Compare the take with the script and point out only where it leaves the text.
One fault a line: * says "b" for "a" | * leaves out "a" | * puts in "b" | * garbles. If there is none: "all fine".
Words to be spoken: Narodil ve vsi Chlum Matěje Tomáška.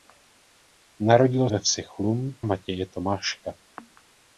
all fine